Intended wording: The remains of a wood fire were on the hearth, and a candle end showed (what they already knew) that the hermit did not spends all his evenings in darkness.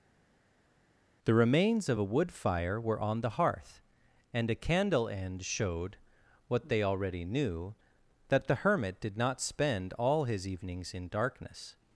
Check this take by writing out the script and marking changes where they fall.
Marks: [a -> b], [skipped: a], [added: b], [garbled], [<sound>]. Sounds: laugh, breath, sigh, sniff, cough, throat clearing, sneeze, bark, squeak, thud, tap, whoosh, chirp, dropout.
The remains of a wood fire were on the hearth, and a candle end showed (what they already knew) that the hermit did not [spends -> spend] all his evenings in darkness.